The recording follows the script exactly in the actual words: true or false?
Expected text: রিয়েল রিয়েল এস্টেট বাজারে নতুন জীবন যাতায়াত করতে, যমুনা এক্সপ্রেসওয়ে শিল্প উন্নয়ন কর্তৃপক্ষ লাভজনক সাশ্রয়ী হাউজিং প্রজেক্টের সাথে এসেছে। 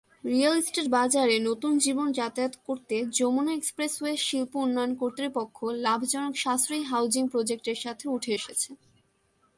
false